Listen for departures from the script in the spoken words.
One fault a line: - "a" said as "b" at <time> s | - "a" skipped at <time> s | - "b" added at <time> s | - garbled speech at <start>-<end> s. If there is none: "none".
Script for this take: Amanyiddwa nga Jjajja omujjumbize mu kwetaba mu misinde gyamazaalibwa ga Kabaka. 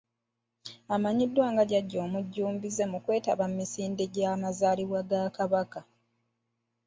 none